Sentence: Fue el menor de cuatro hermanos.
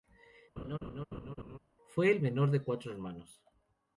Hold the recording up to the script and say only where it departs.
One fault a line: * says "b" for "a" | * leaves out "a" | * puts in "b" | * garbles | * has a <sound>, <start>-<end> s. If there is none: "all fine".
* has a laugh, 0.6-1.6 s